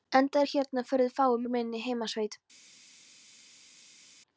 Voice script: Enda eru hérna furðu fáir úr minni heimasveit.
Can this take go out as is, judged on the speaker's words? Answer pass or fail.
pass